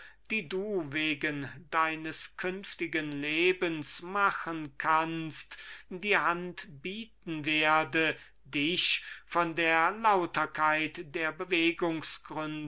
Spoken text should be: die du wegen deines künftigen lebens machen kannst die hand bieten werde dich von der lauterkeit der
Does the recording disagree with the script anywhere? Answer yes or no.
no